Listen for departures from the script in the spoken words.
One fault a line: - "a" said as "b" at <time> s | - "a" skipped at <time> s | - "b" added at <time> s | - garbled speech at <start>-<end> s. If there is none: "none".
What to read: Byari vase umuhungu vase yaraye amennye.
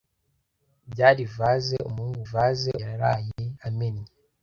none